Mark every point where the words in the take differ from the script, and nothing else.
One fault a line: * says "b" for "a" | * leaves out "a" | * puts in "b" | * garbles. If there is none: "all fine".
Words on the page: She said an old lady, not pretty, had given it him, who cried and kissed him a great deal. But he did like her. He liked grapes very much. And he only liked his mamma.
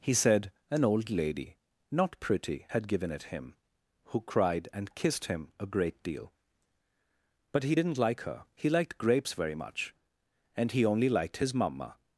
* says "He" for "She"
* says "didn't" for "did"